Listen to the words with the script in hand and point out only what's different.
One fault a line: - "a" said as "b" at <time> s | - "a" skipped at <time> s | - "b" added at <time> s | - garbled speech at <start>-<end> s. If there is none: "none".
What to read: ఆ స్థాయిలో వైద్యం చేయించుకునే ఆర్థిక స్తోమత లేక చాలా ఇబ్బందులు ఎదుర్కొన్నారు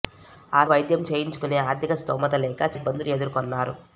- "స్థాయిలో" skipped at 0.7 s
- "చాలా" skipped at 2.7 s